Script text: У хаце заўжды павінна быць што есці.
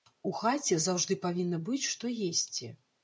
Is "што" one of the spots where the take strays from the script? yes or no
no